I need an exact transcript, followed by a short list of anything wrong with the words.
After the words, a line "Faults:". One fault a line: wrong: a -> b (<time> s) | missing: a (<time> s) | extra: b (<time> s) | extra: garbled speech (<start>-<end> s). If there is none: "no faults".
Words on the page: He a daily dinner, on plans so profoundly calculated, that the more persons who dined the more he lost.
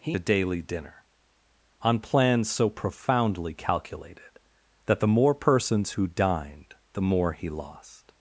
He a daily dinner, on plans so profoundly calculated, that the more persons who dined the more he lost.
Faults:
no faults